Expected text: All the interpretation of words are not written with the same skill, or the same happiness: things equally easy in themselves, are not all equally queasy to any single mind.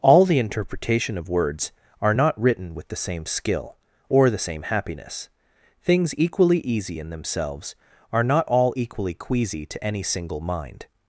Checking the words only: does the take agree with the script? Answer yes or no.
yes